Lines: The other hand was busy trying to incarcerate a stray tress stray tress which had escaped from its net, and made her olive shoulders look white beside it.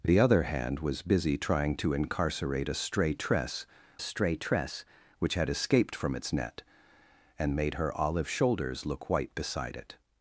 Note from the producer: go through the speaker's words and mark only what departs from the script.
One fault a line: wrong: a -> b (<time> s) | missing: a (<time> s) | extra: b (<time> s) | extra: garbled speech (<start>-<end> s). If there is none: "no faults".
no faults